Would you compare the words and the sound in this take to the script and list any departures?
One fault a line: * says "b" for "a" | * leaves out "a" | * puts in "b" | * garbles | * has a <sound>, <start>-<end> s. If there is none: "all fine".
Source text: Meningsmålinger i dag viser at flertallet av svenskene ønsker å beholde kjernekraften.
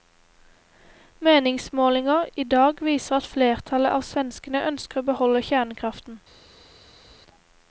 all fine